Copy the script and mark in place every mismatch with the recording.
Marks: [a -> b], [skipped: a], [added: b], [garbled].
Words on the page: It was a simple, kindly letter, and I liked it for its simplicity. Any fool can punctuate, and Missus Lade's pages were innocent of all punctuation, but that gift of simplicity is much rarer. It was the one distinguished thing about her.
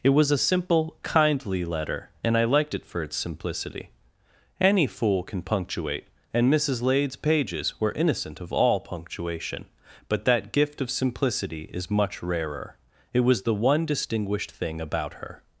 It was a simple, kindly letter, and I liked it for its simplicity. Any fool can punctuate, and Missus Lade's pages were innocent of all punctuation, but that gift of simplicity is much rarer. It was the one distinguished thing about her.